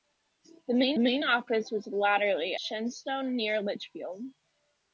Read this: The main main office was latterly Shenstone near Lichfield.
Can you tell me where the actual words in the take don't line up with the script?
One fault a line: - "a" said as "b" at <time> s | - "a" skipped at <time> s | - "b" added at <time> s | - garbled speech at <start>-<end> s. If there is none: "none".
none